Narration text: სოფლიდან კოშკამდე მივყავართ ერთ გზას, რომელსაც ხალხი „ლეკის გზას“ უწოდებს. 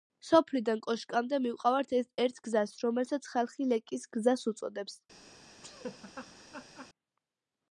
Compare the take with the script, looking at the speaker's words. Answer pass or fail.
pass